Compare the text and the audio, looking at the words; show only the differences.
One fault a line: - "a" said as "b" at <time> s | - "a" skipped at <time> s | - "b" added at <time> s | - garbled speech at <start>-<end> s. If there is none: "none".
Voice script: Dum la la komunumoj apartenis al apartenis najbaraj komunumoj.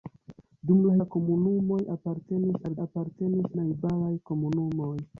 none